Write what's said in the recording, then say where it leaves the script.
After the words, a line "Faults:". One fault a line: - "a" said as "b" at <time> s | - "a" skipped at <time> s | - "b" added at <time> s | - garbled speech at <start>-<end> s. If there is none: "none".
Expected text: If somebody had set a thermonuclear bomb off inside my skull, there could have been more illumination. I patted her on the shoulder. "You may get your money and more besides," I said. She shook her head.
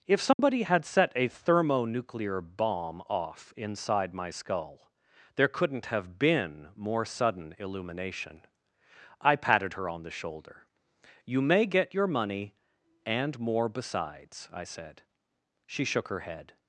If somebody had set a thermonuclear bomb off inside my skull, there couldn't have been more sudden illumination. I patted her on the shoulder. "You may get your money and more besides," I said. She shook her head.
Faults:
- "could" said as "couldn't" at 5.5 s
- "sudden" added at 7.0 s